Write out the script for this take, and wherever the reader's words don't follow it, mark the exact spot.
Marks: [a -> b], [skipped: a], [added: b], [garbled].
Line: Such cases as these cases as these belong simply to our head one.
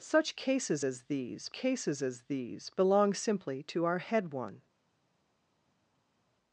Such cases as these cases as these belong simply to our head one.